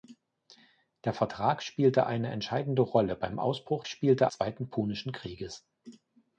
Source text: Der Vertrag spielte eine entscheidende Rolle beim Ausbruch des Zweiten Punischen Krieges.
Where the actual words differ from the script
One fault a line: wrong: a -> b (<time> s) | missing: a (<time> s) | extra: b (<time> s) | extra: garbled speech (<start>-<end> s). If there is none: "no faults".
wrong: des -> spielte (3.9 s)